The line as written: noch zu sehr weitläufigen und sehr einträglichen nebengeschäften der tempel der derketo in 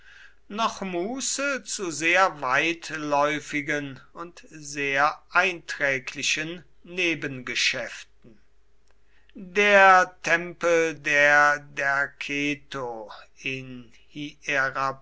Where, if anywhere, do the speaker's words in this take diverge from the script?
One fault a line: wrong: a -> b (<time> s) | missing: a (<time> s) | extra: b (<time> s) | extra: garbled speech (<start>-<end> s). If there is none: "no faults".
extra: muße (0.8 s)